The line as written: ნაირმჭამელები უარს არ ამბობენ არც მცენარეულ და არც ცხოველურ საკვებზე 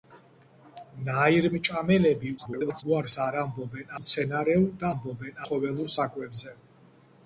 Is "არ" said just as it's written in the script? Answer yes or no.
yes